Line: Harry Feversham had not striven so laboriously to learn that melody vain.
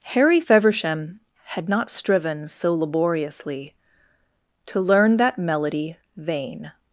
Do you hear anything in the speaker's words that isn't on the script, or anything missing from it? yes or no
no